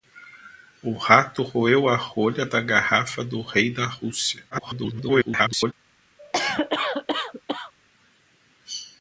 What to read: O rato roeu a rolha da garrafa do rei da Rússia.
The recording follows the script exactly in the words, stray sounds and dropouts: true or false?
false